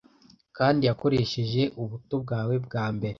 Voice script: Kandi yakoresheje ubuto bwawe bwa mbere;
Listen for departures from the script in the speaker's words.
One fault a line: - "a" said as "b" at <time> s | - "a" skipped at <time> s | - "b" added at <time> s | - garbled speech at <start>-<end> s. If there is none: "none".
none